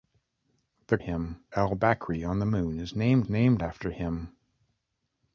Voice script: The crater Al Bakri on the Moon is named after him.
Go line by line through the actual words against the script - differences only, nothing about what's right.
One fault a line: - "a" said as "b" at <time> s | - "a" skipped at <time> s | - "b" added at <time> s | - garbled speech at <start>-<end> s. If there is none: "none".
- "crater" said as "him" at 1.0 s
- "named" added at 3.3 s